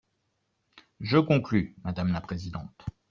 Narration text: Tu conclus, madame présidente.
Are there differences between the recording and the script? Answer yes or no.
yes